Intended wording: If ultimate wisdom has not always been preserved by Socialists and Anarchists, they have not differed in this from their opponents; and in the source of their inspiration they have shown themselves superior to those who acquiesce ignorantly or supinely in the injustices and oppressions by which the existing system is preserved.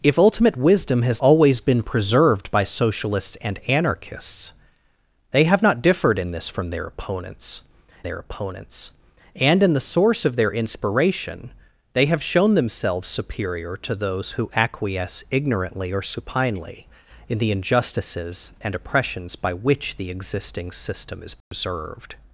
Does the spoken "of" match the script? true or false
true